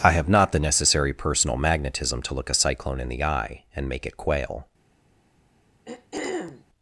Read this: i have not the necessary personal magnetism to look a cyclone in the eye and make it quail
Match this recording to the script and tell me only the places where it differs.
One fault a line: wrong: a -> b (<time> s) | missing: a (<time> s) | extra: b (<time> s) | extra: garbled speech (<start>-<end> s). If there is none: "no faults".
no faults